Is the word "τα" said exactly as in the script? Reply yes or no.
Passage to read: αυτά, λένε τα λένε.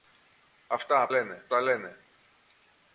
yes